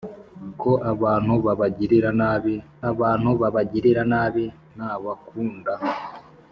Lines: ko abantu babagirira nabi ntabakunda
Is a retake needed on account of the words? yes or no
yes